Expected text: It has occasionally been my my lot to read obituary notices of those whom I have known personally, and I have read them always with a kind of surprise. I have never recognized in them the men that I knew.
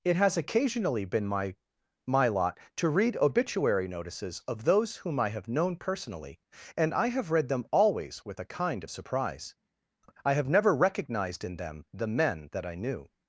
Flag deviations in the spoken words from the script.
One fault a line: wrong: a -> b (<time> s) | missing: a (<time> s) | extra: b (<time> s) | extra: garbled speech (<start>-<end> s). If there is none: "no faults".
no faults